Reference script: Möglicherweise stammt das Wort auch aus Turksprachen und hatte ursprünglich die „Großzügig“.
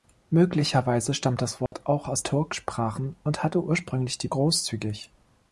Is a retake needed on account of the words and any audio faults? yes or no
yes